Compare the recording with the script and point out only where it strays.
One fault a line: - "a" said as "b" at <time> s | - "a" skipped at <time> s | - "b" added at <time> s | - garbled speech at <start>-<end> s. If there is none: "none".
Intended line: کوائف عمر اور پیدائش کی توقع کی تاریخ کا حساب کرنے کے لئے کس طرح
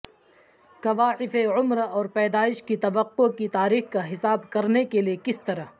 none